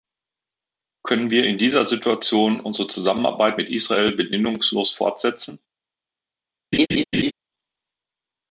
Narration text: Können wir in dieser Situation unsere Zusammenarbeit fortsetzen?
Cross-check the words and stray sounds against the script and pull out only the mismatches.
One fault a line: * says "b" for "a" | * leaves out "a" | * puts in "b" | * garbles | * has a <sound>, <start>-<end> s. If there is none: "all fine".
* puts in "mit Israel bedingungslos"
* has a laugh, 6.7-7.3 s